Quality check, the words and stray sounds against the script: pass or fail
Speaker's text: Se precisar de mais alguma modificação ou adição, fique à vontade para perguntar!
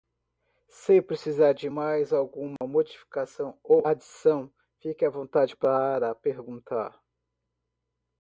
fail